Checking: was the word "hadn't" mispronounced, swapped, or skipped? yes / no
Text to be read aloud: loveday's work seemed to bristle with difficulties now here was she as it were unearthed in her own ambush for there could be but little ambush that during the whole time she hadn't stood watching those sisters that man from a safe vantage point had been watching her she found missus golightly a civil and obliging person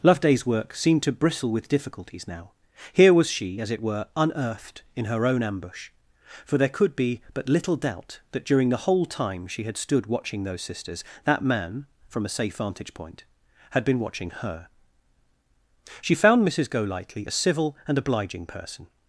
yes